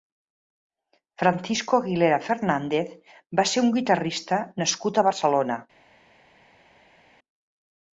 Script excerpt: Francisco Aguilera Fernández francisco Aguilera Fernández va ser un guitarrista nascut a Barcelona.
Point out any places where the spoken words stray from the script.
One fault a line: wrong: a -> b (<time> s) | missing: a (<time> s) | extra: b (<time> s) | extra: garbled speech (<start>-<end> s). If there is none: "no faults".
missing: francisco Aguilera Fernández (3.0 s)